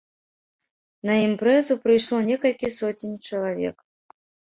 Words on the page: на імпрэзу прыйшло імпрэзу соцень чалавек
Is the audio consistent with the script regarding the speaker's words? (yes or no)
no